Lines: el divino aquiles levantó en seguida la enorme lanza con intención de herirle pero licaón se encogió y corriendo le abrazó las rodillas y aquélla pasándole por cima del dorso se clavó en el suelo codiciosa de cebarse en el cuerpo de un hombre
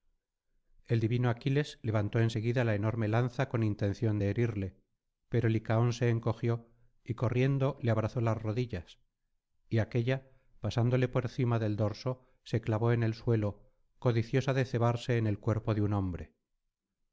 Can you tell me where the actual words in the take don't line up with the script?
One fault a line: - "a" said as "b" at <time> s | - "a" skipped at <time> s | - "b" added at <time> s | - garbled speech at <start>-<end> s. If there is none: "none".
none